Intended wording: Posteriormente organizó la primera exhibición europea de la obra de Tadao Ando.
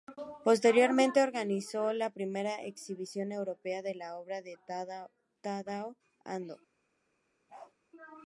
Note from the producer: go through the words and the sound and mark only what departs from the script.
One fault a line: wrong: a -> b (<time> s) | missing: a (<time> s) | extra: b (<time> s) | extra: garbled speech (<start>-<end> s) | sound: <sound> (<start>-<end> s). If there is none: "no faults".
sound: bark (7.5-7.7 s)